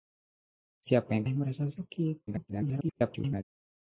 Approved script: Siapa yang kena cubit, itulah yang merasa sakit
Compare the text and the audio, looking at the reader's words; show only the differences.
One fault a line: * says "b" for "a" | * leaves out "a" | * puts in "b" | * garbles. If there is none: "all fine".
* leaves out "kena cubit itulah"
* garbles